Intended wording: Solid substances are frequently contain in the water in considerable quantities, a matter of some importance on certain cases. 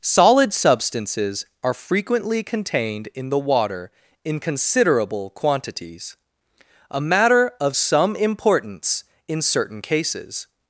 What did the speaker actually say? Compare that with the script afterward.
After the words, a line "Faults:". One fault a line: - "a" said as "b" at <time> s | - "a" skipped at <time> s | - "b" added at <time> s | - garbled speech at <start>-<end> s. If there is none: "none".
Solid substances are frequently contained in the water in considerable quantities, a matter of some importance in certain cases.
Faults:
- "contain" said as "contained" at 2.4 s
- "on" said as "in" at 9.3 s